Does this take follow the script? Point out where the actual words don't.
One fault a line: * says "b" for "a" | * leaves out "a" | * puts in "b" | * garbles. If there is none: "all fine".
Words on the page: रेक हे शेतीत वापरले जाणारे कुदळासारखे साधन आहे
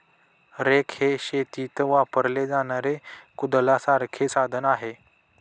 all fine